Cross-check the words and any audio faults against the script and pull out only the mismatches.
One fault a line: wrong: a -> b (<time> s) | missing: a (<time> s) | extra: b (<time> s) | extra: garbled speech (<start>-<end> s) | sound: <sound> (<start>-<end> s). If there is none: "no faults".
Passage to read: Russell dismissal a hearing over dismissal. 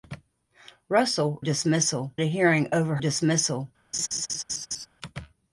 sound: laugh (3.9-4.9 s)